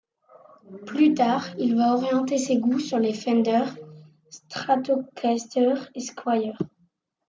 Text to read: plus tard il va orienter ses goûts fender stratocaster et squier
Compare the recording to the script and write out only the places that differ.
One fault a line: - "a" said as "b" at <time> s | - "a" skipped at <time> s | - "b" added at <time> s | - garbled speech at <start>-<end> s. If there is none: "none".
- "sur les" added at 2.8 s